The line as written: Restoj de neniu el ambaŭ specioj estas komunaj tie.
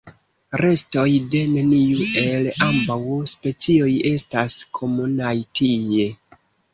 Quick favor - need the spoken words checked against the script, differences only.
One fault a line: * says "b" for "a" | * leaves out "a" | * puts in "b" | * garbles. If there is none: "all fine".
all fine